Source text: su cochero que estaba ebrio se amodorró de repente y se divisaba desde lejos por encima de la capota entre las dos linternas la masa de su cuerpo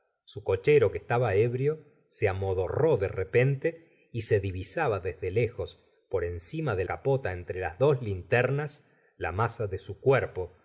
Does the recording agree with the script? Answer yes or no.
no